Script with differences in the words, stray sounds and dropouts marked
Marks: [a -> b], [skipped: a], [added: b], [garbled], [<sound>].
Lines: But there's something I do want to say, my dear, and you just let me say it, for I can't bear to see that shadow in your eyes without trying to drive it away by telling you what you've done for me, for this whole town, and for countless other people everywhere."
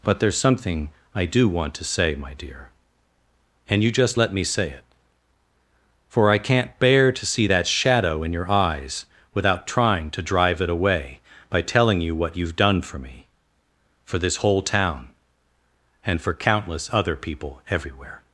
But there's something I do want to say, my dear, and you just let me say it, for I can't bear to see that shadow in your eyes without trying to drive it away by telling you what you've done for me, for this whole town, and for countless other people everywhere."